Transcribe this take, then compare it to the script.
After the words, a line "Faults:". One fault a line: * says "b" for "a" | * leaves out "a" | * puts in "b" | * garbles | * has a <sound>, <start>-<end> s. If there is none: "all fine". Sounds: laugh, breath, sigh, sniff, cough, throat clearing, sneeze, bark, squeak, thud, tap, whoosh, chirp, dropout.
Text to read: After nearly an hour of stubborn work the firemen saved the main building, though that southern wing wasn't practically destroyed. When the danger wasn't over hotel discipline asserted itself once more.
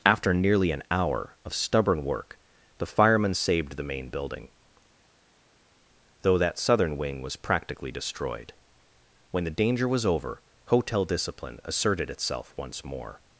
After nearly an hour of stubborn work the firemen saved the main building, though that southern wing was practically destroyed. When the danger was over hotel discipline asserted itself once more.
Faults:
* says "was" for "wasn't"
* says "was" for "wasn't"